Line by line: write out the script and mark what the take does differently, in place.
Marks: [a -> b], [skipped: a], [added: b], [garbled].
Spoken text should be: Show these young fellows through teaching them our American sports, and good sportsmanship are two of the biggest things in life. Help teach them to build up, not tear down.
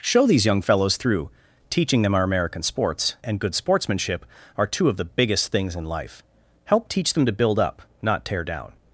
Show these young fellows through teaching them our American sports, and good sportsmanship are two of the biggest things in life. Help teach them to build up, not tear down.